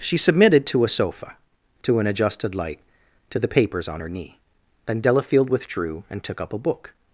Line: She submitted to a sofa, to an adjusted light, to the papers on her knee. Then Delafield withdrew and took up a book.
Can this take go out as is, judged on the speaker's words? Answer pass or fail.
pass